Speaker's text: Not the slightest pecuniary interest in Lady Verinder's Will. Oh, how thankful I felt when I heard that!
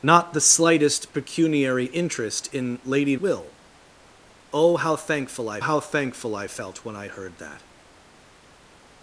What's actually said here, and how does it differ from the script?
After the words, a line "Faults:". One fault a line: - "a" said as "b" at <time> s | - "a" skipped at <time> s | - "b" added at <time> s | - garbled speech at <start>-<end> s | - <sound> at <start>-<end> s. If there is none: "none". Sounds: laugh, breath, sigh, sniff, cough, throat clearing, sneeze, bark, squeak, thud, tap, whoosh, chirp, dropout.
Not the slightest pecuniary interest in Lady Will. Oh, how thankful I how thankful I felt when I heard that!
Faults:
- "Verinder's" skipped at 3.1 s
- "how thankful I" added at 5.6 s